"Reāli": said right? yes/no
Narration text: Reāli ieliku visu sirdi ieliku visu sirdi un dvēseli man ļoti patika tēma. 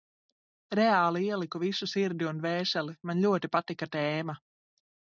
yes